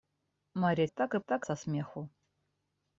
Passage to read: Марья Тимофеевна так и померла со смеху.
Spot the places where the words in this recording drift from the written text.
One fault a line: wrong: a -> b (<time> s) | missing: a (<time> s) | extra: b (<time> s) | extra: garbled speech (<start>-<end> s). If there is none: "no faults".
missing: Тимофеевна (0.9 s)
wrong: померла -> так (1.2 s)